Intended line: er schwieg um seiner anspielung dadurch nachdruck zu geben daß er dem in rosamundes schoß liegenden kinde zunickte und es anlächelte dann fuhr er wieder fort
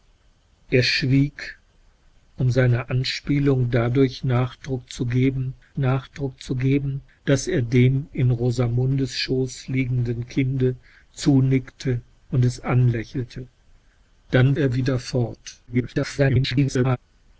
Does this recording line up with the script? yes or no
no